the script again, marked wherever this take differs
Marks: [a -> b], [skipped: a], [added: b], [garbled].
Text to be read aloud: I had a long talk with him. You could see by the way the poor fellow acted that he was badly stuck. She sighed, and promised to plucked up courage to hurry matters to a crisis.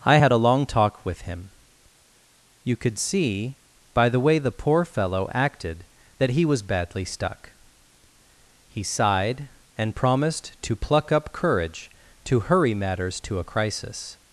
I had a long talk with him. You could see by the way the poor fellow acted that he was badly stuck. [She -> He] sighed, and promised to [plucked -> pluck] up courage to hurry matters to a crisis.